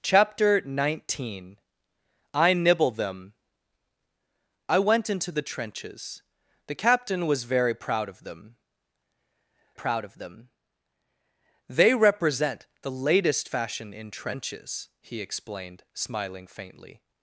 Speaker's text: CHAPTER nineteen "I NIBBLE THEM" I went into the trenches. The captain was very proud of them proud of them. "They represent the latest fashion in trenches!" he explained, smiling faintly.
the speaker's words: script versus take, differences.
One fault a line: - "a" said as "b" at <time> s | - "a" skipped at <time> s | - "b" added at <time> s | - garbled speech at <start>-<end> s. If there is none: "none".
none